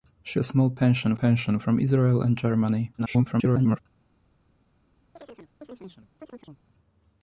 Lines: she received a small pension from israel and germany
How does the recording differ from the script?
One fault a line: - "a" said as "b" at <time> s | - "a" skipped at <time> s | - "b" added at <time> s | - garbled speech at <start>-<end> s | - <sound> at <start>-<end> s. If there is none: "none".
- "received" skipped at 0.4 s
- "pension" added at 1.1 s
- garbled speech at 3.0-3.8 s
- chirp at 5.2-6.6 s